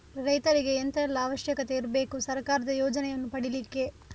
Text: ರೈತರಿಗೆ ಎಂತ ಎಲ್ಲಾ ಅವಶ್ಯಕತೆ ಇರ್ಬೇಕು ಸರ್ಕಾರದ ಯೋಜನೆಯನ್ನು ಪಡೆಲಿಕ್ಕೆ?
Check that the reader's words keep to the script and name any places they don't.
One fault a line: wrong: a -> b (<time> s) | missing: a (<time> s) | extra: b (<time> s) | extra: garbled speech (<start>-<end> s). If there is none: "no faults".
no faults